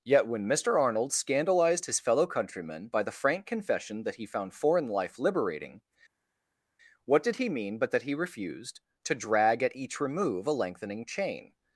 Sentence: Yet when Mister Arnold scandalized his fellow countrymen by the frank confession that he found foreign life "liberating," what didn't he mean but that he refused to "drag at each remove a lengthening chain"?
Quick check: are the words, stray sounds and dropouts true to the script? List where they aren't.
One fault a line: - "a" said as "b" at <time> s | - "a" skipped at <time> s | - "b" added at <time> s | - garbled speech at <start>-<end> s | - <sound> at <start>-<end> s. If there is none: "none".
- "didn't" said as "did" at 7.2 s